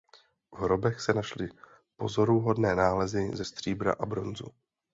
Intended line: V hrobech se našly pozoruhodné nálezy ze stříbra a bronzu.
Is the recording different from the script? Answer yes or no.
no